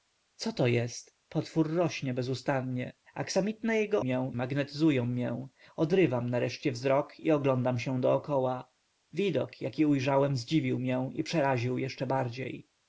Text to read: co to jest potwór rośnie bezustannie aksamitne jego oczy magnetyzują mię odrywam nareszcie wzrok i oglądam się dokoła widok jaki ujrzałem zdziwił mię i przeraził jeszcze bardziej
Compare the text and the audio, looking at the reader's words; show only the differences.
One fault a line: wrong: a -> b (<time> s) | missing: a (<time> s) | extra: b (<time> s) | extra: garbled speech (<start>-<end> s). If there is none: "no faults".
wrong: oczy -> mię (4.0 s)